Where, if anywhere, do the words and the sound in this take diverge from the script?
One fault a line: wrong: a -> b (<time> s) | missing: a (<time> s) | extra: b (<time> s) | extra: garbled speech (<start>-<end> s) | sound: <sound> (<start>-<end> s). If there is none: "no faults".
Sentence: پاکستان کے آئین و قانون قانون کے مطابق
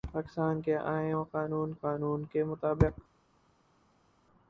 no faults